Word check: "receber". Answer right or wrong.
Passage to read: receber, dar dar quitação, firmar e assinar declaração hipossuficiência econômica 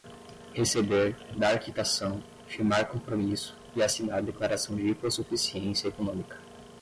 right